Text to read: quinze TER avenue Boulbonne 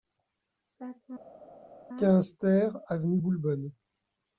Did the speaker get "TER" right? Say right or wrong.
right